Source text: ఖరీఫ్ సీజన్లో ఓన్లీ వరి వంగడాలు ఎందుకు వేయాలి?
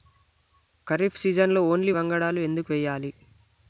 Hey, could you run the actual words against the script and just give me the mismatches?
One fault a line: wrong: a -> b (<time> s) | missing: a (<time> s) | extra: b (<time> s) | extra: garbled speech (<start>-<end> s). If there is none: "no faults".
missing: వరి (1.9 s)